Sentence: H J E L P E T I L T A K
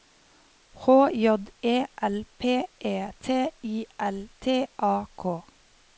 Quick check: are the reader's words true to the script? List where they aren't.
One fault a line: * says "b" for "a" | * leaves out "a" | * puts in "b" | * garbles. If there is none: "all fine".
all fine